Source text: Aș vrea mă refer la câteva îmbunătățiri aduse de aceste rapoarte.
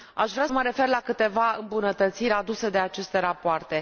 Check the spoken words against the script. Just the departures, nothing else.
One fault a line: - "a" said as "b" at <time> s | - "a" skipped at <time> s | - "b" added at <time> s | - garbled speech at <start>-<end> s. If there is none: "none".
none